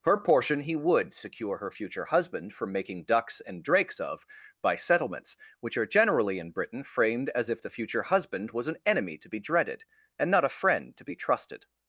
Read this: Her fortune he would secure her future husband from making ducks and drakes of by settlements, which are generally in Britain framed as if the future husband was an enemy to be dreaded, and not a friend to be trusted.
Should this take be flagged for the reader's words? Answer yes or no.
yes